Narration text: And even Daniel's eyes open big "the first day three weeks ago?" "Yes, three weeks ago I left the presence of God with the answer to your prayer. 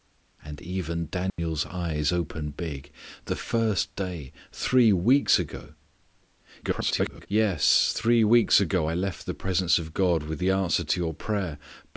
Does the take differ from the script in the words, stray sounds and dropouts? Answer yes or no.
yes